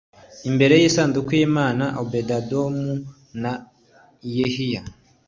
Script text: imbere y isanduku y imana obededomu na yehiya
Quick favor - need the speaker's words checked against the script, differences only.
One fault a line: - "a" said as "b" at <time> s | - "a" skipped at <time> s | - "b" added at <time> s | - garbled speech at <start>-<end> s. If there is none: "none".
none